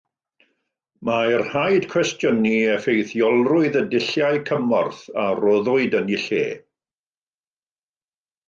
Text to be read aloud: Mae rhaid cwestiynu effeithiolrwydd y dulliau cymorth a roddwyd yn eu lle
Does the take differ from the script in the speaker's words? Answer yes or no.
no